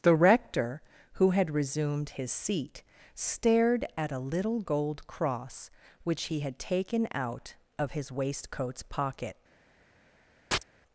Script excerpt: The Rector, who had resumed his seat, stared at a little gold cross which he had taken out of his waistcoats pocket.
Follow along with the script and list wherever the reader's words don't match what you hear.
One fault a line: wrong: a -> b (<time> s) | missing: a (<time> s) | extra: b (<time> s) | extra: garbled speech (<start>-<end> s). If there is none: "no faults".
no faults